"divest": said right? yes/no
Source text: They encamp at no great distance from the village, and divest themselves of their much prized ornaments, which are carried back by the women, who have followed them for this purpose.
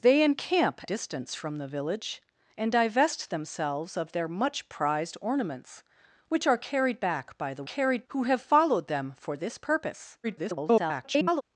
yes